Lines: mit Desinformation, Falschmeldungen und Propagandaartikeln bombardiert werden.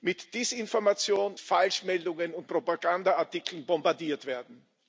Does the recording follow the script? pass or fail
pass